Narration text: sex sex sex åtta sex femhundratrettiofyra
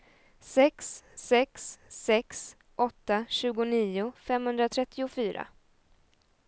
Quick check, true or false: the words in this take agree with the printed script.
false